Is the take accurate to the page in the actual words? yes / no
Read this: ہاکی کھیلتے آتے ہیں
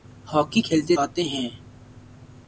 yes